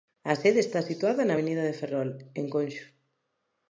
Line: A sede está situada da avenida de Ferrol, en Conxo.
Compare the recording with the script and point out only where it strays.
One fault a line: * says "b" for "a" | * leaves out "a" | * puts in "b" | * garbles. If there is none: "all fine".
* says "na" for "da"